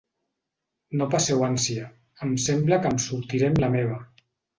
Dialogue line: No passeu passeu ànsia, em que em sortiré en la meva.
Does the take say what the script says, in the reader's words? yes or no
no